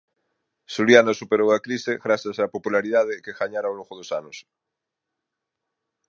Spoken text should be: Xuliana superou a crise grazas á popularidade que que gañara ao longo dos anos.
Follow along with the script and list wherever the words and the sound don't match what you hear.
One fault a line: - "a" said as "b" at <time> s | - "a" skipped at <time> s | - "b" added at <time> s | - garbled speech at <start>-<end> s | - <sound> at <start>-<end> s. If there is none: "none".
- "que" skipped at 3.4 s